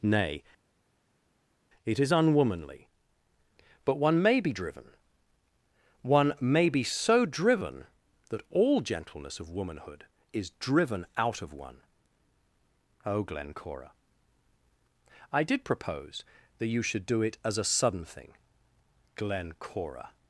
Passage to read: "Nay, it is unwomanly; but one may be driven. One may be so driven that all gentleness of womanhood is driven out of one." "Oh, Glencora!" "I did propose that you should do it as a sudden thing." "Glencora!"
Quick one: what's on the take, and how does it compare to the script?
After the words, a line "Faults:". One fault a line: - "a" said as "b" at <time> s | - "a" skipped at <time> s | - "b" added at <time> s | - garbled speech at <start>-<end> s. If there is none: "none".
"Nay, it is unwomanly; but one may be driven. One may be so driven that all gentleness of womanhood is driven out of one." "Oh, Glencora!" "I did propose that you should do it as a sudden thing." "Glencora!"
Faults:
none